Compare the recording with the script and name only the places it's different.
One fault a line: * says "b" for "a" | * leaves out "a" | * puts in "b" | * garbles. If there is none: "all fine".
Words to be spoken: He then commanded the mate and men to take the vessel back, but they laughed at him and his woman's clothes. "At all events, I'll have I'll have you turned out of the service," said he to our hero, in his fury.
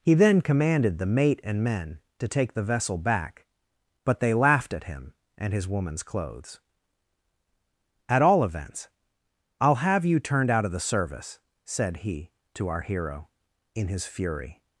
* leaves out "I'll have"